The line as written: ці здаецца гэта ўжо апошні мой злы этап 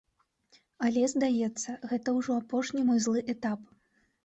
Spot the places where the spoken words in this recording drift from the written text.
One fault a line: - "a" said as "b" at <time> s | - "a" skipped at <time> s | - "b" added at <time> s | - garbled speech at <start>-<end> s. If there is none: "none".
- "ці" said as "але" at 0.9 s